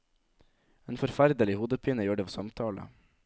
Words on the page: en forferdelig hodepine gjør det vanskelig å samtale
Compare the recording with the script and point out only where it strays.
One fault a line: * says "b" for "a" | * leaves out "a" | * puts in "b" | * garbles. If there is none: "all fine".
* leaves out "vanskelig"